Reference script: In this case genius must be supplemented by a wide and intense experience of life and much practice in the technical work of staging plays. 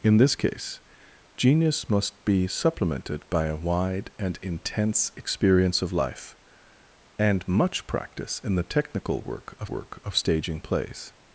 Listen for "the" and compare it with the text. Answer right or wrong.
right